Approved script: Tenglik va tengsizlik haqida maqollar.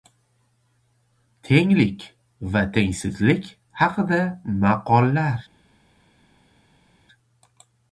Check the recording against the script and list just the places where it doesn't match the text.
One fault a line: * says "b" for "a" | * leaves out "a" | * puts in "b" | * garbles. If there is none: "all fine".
all fine